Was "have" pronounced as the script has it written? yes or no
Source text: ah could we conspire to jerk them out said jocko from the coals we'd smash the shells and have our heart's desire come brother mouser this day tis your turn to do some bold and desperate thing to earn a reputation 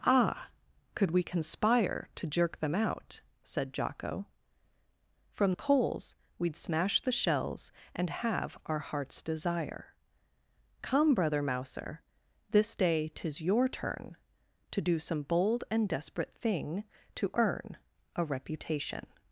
yes